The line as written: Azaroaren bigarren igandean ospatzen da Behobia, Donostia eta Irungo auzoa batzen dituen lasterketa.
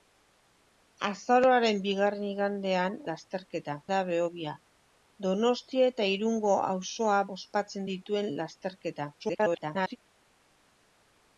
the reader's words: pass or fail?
fail